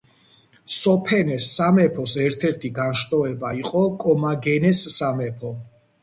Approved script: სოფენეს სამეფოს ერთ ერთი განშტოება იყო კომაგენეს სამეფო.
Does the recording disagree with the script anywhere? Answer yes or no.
no